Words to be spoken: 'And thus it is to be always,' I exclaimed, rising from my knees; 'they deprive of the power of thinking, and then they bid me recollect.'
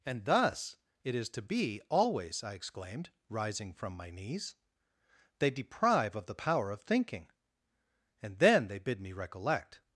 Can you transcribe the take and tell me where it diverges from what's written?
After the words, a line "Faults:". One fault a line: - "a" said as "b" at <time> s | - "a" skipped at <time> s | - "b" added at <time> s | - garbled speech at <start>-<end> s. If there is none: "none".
'And thus it is to be always,' I exclaimed, rising from my knees; 'they deprive of the power of thinking, and then they bid me recollect.'
Faults:
none